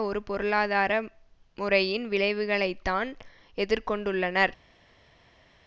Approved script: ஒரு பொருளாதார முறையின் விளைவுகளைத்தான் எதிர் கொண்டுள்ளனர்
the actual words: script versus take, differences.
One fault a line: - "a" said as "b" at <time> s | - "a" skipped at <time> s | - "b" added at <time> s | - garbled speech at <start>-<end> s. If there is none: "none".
none